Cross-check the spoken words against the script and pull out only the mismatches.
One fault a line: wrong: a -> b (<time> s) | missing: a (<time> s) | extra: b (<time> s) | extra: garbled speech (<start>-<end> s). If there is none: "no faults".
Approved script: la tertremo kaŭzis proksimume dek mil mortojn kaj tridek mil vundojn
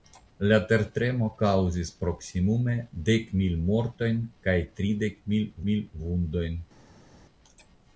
extra: mil (5.7 s)